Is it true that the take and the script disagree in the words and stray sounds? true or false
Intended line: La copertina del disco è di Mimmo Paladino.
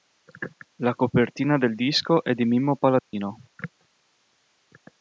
true